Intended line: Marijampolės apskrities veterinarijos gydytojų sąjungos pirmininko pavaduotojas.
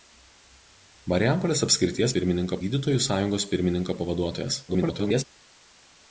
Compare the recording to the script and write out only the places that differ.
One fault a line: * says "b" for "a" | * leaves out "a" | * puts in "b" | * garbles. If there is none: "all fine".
* says "pirmininko" for "veterinarijos"
* garbles